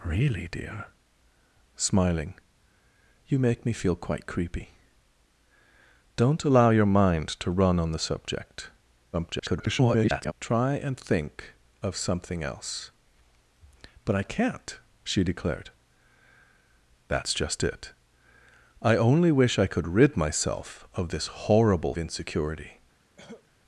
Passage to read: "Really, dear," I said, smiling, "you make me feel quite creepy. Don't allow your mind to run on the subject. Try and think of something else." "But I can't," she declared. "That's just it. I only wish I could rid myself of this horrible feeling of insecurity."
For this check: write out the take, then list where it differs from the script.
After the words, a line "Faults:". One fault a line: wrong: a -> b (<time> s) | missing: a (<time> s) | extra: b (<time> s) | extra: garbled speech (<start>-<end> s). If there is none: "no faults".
"Really, dear," smiling, "you make me feel quite creepy. Don't allow your mind to run on the subject. [garbled] Try and think of something else." "But I can't," she declared. "That's just it. I only wish I could rid myself of this horrible insecurity."
Faults:
missing: I said (0.9 s)
extra: garbled speech (9.1-10.3 s)
missing: feeling of (22.0 s)